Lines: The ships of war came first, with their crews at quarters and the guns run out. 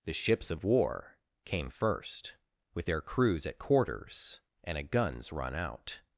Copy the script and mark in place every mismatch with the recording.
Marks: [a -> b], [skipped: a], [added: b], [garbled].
The ships of war came first, with their crews at quarters and [the -> a] guns run out.